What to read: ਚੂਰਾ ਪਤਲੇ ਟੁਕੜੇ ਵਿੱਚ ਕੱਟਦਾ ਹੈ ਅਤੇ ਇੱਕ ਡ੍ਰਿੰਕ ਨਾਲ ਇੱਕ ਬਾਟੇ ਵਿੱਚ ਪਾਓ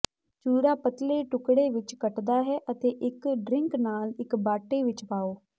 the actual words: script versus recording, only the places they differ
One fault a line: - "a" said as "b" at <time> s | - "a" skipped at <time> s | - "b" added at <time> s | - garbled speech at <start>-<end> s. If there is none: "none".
none